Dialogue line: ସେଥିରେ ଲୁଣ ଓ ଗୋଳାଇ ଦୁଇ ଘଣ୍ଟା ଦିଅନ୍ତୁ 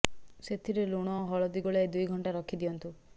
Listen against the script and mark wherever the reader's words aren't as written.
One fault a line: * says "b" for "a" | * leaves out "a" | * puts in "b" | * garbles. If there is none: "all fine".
* puts in "ହଳଦୀ"
* puts in "ରଖି"